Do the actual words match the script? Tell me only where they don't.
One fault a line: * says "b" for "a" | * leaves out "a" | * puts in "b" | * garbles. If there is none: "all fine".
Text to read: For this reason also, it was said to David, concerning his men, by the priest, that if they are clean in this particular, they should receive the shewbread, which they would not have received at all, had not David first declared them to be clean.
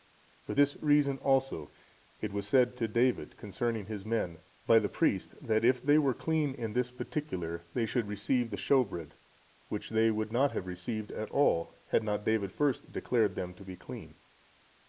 * says "were" for "are"